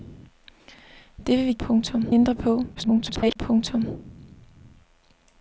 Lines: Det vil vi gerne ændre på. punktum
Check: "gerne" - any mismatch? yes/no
yes